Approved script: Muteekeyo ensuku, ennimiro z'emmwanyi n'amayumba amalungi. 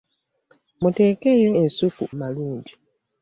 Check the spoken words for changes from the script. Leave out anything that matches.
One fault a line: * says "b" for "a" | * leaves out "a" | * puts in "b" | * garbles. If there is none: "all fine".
* leaves out "ennimiro z'emmwanyi n'amayumba"